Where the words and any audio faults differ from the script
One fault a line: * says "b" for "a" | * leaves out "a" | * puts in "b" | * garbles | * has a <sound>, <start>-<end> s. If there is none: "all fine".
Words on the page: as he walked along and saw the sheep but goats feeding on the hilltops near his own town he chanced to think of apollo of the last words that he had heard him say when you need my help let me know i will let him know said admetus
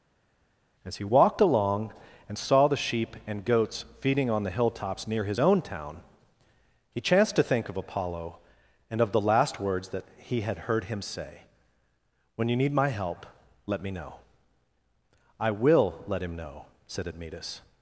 * says "and" for "but"
* puts in "and"